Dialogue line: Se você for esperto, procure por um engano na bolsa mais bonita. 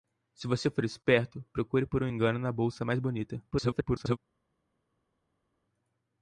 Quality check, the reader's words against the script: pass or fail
fail